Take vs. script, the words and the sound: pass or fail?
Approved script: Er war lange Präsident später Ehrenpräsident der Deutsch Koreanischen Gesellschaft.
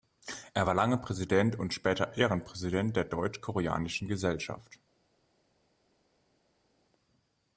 fail